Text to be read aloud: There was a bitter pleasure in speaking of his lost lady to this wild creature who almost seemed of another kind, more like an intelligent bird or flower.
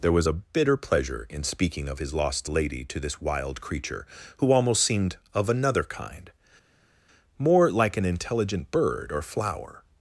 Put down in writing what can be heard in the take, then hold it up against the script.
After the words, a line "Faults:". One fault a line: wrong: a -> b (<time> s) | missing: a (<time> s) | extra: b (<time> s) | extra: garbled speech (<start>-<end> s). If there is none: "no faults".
There was a bitter pleasure in speaking of his lost lady to this wild creature who almost seemed of another kind, more like an intelligent bird or flower.
Faults:
no faults